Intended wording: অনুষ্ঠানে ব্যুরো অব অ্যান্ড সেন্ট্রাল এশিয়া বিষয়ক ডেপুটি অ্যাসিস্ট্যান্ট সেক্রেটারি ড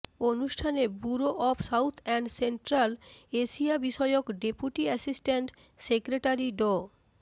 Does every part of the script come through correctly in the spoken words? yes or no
no